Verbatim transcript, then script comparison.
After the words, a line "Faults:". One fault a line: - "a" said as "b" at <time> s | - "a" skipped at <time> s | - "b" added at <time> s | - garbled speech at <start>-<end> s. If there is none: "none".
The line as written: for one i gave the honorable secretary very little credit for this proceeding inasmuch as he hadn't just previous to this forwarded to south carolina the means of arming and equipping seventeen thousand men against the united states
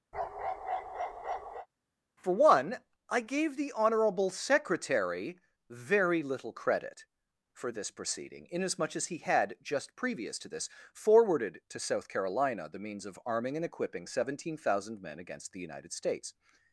for one i gave the honorable secretary very little credit for this proceeding inasmuch as he had just previous to this forwarded to south carolina the means of arming and equipping seventeen thousand men against the united states
Faults:
- "hadn't" said as "had" at 9.2 s